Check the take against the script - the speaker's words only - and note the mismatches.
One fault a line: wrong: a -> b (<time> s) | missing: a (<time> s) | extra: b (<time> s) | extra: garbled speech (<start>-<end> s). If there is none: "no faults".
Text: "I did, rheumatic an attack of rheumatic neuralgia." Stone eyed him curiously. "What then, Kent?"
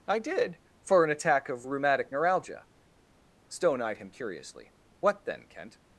wrong: rheumatic -> for (0.8 s)